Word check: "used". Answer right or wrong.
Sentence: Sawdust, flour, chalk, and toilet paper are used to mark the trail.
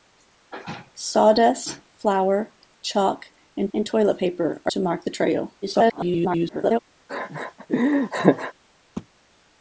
wrong